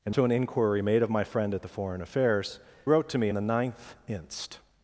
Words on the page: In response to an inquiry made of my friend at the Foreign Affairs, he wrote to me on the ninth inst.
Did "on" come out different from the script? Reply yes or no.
yes